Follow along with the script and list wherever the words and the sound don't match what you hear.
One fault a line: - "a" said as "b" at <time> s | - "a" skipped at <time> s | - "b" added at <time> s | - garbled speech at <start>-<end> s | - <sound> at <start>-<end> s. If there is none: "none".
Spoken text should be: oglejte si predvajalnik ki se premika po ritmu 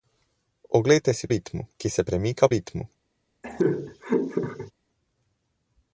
- "predvajalnik" said as "ritmu" at 1.3 s
- "po" skipped at 2.5 s
- laugh at 3.4-4.7 s